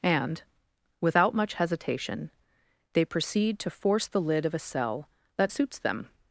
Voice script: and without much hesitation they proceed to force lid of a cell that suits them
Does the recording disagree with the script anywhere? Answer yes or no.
yes